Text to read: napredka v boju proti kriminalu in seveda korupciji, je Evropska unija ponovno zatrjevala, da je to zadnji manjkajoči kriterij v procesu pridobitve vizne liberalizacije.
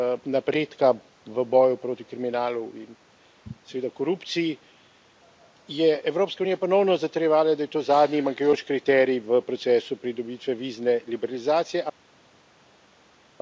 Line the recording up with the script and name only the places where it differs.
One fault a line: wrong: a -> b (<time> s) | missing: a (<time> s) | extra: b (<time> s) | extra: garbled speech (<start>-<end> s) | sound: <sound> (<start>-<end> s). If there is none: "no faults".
no faults